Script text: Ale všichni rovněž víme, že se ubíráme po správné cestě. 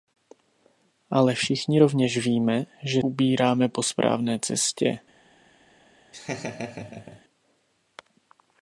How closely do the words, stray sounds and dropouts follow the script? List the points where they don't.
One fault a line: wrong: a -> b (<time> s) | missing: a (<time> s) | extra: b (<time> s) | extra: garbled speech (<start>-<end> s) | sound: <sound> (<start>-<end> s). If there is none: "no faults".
missing: se (3.0 s)
sound: laugh (6.1-7.2 s)